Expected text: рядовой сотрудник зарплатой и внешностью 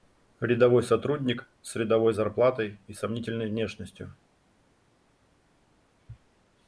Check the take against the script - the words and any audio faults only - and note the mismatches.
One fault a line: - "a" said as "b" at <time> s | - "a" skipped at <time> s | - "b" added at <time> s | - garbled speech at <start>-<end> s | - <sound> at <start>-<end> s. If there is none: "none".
- "с рядовой" added at 1.6 s
- "сомнительной" added at 2.9 s